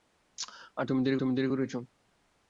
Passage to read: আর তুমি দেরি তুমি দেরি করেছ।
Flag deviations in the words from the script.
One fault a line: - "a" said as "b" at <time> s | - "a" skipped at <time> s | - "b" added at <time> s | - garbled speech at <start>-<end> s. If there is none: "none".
none